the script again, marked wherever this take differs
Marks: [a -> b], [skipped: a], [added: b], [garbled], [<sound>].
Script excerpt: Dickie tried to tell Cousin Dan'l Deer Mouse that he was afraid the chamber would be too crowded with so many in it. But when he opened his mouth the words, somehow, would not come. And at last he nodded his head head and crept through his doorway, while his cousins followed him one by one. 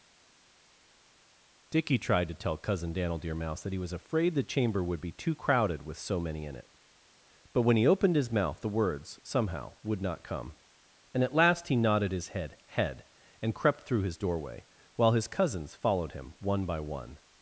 Dickie tried to tell Cousin Dan'l Deer Mouse that he was afraid the chamber would be too crowded with so many in it. But when he opened his mouth the words, somehow, would not come. And at last he nodded his head head and crept through his doorway, while his cousins followed him one by one.